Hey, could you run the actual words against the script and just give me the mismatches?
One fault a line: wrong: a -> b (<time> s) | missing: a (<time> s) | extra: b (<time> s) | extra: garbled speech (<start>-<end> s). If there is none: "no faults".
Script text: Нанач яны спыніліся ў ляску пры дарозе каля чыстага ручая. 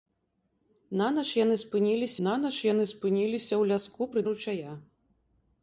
extra: нанач яны спыніліся (2.3 s)
missing: дарозе каля чыстага (4.2 s)